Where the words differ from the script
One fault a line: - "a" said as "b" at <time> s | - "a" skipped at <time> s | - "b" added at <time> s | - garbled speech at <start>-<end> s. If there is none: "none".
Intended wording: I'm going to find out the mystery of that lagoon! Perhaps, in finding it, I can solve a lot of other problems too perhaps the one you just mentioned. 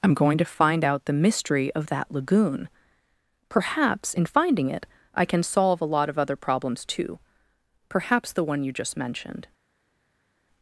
none